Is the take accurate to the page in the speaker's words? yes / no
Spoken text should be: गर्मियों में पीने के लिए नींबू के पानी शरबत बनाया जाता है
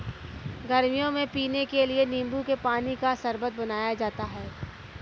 no